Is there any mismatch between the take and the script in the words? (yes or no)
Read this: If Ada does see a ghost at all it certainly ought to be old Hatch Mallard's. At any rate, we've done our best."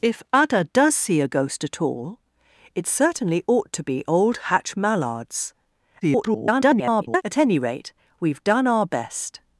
yes